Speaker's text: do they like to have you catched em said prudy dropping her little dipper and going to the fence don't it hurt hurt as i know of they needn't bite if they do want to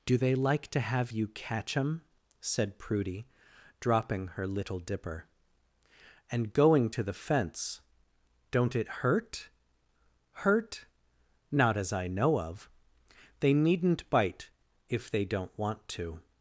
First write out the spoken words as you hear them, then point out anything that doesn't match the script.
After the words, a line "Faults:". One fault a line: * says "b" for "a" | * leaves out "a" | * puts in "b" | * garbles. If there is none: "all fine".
do they like to have you catch em said prudy dropping her little dipper and going to the fence don't it hurt hurt not as i know of they needn't bite if they don't want to
Faults:
* says "catch" for "catched"
* puts in "not"
* says "don't" for "do"